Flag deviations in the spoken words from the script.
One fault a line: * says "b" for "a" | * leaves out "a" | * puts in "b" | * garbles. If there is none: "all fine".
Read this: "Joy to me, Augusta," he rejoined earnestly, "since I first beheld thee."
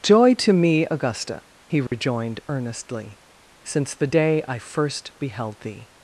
* puts in "the day"